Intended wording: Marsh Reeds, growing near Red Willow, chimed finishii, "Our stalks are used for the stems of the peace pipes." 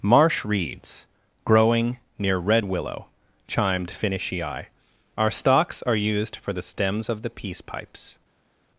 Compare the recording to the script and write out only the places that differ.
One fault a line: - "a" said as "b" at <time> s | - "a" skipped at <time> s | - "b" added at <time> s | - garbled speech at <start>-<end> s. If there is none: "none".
none